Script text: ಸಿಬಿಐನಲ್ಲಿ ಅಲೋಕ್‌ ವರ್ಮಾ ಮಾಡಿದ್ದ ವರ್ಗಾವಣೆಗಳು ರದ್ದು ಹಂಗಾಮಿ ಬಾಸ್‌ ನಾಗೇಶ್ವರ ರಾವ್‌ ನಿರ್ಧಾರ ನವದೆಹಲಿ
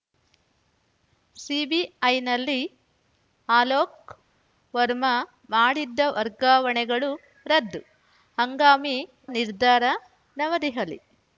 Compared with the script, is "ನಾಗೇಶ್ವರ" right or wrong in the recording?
wrong